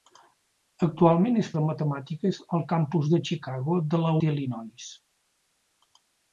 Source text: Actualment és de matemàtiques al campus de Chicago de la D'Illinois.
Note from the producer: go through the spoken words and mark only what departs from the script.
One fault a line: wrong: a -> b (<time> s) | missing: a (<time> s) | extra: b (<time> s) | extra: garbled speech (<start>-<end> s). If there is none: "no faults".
no faults